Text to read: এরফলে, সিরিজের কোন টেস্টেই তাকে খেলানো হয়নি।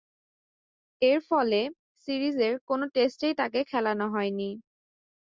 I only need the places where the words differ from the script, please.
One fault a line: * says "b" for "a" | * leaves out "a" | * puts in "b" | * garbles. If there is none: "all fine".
all fine